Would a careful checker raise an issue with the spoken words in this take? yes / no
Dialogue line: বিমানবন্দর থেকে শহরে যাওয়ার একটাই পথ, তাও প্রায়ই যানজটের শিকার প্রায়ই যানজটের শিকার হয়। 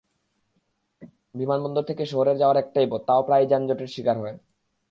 yes